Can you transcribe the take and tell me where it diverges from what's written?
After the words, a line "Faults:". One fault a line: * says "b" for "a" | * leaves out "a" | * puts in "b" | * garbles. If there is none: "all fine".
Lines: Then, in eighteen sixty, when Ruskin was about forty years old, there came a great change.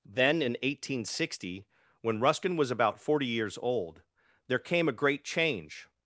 Then, in eighteen sixty, when Ruskin was about forty years old, there came a great change.
Faults:
all fine